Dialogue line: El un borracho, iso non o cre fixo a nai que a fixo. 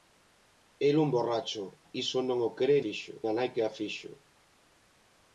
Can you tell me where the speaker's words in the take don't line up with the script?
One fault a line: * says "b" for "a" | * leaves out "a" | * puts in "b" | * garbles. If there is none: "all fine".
all fine